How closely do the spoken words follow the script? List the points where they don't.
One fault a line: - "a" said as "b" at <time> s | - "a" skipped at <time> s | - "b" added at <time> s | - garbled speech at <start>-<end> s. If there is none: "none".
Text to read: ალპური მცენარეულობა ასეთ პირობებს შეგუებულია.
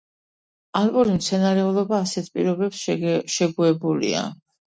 none